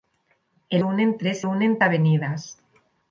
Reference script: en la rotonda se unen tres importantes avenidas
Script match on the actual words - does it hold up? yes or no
no